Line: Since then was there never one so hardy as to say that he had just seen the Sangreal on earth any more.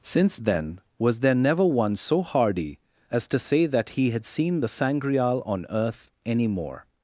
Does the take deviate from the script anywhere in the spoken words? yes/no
yes